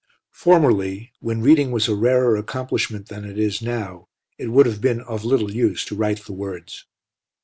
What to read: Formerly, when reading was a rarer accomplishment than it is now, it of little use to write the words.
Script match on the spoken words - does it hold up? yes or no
no